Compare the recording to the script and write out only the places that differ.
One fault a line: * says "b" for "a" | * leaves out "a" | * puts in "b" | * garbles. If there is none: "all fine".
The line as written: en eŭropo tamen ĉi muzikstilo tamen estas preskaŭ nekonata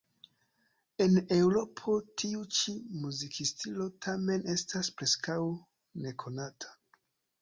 * says "tiu" for "tamen"